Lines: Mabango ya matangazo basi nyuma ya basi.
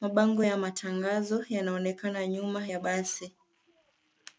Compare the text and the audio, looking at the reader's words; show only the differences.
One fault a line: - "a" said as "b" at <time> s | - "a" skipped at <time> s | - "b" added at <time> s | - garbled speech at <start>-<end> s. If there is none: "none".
- "basi" said as "yanaonekana" at 1.5 s